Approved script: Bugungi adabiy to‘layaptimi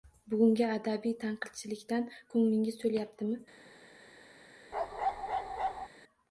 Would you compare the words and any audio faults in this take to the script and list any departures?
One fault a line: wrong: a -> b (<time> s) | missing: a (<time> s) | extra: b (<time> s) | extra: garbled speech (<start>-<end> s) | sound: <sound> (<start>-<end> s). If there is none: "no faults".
extra: tanqidchilikdan ko‘nglingiz (1.2 s)
sound: bark (4.7-5.9 s)